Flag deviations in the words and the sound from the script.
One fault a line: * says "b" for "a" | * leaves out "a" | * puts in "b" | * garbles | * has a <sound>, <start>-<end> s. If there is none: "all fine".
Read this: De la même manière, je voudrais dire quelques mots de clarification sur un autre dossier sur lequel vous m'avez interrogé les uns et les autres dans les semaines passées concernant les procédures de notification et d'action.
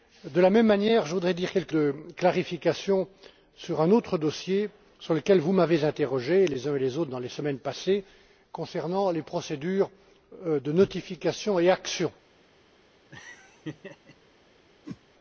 * leaves out "mots"
* has a laugh, 13.1-14.2 s
* has a whoosh, 14.8-15.0 s